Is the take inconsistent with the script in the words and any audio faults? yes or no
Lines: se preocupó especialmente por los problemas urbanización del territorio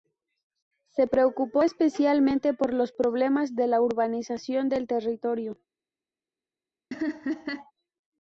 yes